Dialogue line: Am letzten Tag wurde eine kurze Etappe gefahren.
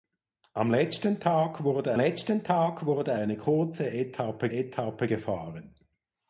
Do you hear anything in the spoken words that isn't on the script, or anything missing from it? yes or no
yes